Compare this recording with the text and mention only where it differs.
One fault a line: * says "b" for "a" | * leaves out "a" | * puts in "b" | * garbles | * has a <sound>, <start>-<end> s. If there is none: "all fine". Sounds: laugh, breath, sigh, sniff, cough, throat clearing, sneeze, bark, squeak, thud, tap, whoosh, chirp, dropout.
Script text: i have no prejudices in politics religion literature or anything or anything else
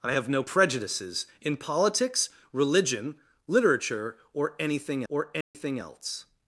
* has a dropout, 5.4-5.5 s